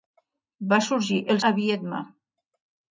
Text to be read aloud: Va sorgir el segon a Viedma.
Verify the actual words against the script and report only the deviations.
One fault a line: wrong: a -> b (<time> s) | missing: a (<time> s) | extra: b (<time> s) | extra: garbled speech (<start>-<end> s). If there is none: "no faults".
missing: segon (1.4 s)